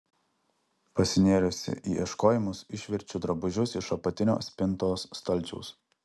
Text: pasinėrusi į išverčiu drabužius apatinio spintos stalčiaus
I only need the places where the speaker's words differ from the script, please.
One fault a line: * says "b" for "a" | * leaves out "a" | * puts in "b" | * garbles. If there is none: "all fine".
* puts in "ieškojimus"
* puts in "iš"